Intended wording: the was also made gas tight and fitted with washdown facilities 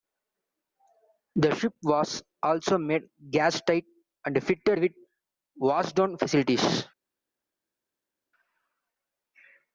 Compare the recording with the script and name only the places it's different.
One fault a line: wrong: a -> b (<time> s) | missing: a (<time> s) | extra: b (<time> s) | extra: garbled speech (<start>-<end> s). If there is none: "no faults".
extra: ship (1.6 s)